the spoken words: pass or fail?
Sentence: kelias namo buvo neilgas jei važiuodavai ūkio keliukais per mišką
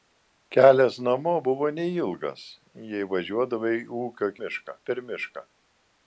fail